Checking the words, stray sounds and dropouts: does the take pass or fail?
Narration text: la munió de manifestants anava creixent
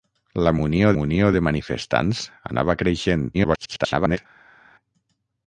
fail